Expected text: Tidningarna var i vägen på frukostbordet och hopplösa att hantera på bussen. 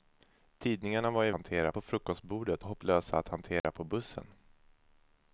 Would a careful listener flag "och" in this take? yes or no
yes